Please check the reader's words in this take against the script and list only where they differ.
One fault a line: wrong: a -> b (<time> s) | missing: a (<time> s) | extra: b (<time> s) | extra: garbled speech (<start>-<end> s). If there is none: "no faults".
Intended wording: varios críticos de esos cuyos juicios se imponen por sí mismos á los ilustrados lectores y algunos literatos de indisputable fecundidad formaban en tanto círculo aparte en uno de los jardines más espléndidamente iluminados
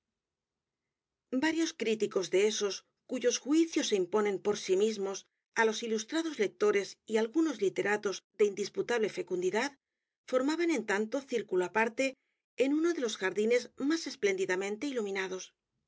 no faults